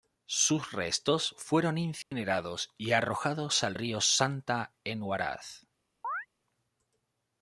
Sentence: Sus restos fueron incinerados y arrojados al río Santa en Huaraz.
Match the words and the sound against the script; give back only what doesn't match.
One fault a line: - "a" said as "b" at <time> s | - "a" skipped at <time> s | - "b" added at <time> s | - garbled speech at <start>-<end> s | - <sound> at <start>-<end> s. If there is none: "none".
- dropout at 2.0-2.1 s
- chirp at 6.0-6.3 s